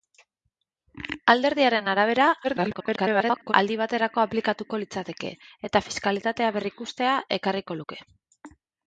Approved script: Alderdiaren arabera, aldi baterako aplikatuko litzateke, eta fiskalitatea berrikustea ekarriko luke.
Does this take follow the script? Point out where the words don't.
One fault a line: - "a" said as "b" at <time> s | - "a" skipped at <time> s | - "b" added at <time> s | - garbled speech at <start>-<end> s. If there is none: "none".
- garbled speech at 2.4-3.5 s